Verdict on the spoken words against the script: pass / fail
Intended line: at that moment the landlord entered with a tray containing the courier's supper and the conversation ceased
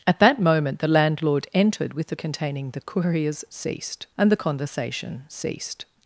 fail